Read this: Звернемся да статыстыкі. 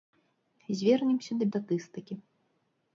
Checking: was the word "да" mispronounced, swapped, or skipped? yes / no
no